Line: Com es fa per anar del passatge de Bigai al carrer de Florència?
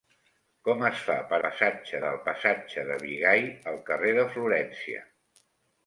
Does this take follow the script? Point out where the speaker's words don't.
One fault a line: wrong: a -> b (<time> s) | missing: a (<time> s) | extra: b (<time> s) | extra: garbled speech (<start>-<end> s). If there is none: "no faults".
wrong: anar -> passatge (1.4 s)